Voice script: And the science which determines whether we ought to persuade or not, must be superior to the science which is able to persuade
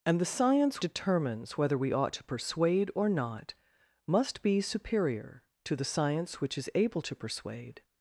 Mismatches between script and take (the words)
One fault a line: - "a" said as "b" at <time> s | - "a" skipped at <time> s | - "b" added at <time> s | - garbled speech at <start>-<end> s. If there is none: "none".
- "which" skipped at 0.8 s